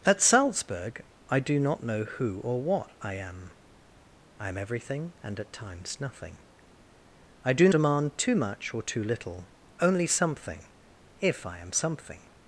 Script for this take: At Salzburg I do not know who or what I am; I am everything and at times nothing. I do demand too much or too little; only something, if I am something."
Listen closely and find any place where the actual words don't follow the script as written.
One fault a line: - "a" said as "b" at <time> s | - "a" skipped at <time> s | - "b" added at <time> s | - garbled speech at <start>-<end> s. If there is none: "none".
none